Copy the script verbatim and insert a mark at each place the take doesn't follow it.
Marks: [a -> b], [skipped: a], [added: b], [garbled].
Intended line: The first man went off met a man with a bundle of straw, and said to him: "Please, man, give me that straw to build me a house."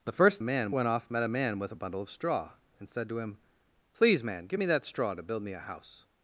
The first man went off met a man with a bundle of straw, and said to him: "Please, man, give me that straw to build me a house."